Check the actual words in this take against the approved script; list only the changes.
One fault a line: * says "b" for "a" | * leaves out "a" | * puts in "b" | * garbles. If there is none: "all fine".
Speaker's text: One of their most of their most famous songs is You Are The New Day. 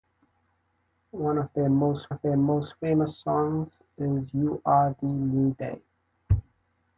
all fine